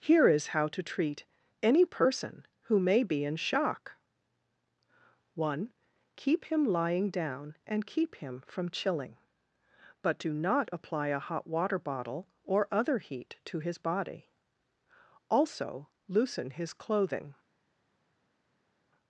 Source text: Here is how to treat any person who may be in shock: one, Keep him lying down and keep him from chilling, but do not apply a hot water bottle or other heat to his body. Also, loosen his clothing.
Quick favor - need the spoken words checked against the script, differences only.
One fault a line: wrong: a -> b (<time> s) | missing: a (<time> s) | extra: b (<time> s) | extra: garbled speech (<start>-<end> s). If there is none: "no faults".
no faults